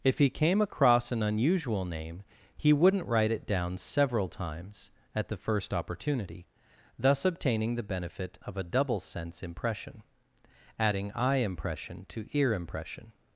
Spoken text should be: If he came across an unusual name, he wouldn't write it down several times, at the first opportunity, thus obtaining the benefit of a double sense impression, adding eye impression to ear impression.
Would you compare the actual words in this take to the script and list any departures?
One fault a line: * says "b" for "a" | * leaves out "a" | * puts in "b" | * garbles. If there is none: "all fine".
all fine